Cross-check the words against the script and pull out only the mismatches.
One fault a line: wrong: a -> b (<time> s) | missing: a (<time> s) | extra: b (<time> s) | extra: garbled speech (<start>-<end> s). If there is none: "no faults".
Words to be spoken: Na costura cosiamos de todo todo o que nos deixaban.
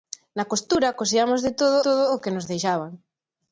no faults